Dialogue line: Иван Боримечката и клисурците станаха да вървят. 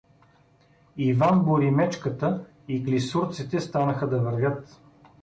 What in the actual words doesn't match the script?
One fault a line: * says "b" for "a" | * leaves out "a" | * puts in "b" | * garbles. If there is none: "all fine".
all fine